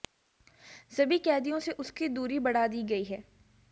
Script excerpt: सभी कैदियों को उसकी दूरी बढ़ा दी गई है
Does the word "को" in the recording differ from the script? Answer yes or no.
yes